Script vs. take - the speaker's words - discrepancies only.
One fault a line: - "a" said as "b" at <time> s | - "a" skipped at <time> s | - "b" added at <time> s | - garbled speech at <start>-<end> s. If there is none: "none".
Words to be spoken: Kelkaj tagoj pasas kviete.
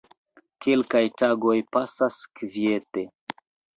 none